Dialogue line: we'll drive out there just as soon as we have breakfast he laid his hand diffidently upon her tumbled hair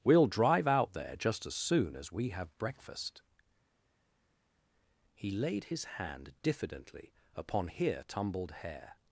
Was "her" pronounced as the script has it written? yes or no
no